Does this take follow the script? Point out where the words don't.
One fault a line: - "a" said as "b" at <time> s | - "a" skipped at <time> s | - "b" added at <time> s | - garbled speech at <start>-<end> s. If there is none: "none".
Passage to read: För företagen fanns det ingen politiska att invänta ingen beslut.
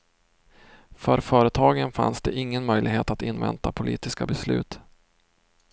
- "politiska" said as "möjlighet" at 2.6 s
- "ingen" said as "politiska" at 3.7 s